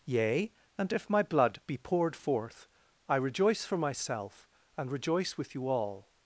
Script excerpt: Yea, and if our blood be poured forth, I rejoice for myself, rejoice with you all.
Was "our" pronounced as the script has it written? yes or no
no